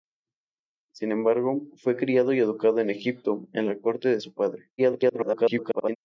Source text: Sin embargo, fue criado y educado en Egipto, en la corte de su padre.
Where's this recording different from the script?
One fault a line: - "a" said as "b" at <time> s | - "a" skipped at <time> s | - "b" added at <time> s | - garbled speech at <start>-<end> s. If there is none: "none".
- garbled speech at 4.8-6.0 s